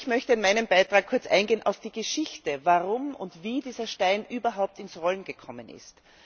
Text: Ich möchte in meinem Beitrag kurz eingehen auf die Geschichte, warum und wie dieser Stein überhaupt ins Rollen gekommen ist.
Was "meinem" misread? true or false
false